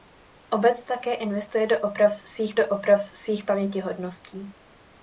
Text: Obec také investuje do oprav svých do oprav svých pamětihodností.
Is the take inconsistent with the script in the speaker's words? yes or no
no